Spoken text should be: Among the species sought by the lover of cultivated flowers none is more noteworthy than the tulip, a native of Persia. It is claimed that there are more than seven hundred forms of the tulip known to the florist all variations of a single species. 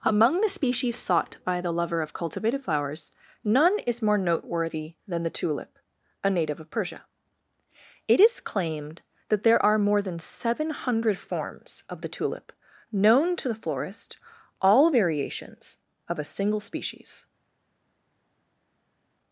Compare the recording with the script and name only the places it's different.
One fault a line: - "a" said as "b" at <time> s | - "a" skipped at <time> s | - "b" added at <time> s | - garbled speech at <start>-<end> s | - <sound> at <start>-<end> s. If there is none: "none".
none